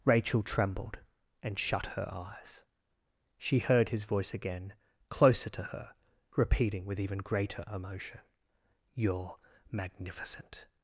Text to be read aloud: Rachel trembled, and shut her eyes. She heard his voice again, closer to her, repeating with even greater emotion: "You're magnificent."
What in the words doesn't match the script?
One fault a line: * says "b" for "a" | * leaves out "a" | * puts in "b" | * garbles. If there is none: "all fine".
all fine